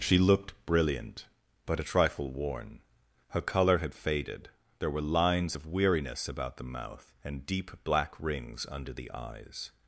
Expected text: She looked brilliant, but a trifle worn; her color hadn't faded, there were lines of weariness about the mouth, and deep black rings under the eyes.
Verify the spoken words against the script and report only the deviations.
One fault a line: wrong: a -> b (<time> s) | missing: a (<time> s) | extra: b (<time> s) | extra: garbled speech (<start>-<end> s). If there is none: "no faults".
wrong: hadn't -> had (3.8 s)